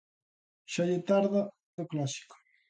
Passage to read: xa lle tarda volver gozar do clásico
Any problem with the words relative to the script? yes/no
yes